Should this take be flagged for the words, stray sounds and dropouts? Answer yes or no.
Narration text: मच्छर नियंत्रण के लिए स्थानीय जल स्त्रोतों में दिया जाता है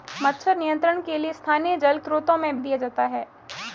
no